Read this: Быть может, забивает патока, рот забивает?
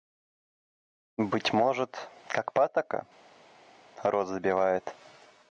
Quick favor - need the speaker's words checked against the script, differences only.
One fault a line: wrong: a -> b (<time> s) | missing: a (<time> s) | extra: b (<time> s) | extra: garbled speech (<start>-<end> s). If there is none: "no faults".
wrong: забивает -> как (2.3 s)